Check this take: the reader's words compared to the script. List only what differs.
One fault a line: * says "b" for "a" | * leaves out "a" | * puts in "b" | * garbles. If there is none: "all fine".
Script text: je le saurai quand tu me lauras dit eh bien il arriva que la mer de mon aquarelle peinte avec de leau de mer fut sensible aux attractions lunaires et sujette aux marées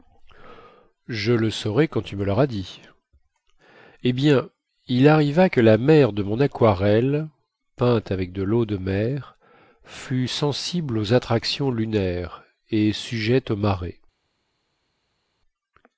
all fine